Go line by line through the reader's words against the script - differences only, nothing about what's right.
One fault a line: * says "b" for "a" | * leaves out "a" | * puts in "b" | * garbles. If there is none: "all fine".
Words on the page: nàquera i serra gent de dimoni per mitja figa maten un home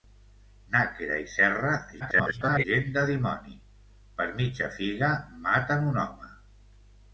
* garbles